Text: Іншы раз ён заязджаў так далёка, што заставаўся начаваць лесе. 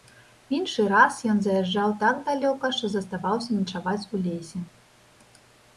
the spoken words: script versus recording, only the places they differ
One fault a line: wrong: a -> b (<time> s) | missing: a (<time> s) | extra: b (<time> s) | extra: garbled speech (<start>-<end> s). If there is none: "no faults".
extra: у (4.1 s)